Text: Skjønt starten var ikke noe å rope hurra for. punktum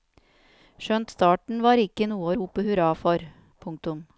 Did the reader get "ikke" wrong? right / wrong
right